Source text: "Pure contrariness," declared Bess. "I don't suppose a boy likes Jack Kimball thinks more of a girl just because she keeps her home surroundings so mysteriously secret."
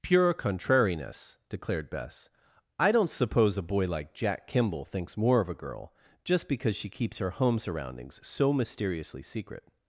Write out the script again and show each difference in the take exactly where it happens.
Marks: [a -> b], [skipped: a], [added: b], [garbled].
"Pure contrariness," declared Bess. "I don't suppose a boy [likes -> like] Jack Kimball thinks more of a girl just because she keeps her home surroundings so mysteriously secret."